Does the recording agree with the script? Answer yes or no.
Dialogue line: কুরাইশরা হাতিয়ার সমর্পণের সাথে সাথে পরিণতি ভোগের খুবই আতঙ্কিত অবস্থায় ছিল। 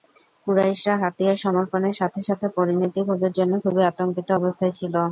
no